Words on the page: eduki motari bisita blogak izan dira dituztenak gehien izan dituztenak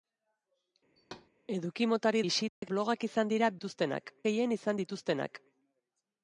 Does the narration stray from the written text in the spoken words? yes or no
no